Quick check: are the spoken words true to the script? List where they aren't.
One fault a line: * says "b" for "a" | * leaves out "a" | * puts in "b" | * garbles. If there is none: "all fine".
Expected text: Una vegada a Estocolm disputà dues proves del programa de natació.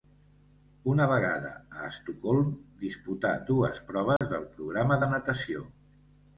all fine